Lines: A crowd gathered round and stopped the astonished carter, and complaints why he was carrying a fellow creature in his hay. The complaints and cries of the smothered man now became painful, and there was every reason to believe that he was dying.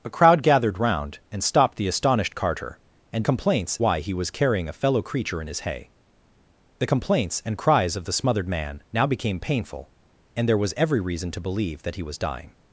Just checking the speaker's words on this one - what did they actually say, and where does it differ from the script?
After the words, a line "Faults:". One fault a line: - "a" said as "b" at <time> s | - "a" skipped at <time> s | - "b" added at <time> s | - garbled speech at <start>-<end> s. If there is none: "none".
A crowd gathered round and stopped the astonished carter, and complaints why he was carrying a fellow creature in his hay. The complaints and cries of the smothered man now became painful, and there was every reason to believe that he was dying.
Faults:
none